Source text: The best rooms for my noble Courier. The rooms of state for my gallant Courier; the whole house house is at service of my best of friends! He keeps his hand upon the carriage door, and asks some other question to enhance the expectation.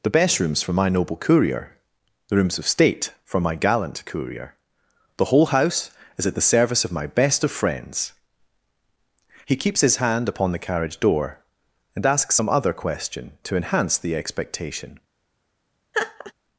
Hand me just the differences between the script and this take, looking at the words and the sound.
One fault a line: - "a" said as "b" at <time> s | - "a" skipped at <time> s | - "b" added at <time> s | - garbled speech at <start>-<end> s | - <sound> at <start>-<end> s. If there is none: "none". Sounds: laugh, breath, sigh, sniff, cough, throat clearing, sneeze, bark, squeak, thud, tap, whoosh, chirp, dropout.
- "house" skipped at 5.9 s
- "the" added at 6.3 s
- laugh at 15.9-16.3 s